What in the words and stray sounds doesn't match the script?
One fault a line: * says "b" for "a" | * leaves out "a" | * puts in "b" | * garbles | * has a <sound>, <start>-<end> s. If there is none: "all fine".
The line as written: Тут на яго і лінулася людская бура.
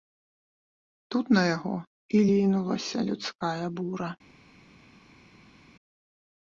all fine